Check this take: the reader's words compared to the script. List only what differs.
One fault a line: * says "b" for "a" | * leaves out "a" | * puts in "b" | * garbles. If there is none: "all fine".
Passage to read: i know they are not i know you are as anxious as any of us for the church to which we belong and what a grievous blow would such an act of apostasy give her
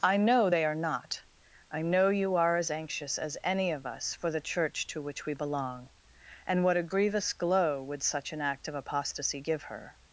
* says "glow" for "blow"